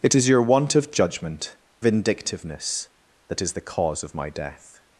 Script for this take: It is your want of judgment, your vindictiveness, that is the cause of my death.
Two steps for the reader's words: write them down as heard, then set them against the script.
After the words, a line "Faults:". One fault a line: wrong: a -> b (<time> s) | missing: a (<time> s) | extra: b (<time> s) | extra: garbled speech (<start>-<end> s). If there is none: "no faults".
It is your want of judgment, vindictiveness, that is the cause of my death.
Faults:
missing: your (1.6 s)